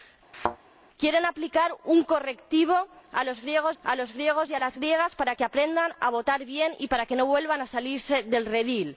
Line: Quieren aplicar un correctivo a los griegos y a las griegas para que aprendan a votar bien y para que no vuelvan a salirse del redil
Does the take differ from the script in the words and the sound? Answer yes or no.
yes